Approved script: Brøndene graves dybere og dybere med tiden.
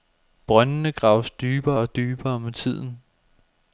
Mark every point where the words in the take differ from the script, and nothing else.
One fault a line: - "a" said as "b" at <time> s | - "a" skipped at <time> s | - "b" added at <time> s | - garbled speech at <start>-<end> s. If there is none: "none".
none